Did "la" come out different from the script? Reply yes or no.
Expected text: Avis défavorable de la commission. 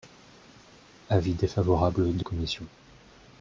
yes